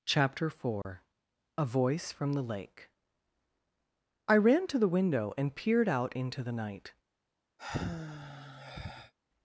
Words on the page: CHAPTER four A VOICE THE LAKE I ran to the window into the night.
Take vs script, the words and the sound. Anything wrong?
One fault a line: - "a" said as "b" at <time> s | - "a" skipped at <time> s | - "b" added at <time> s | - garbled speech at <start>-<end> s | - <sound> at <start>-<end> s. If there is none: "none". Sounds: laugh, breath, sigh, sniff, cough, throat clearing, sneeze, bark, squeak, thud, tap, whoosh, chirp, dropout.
- dropout at 0.8-0.9 s
- "FROM" added at 2.1 s
- "and peered out" added at 5.4 s
- sigh at 7.6-9.1 s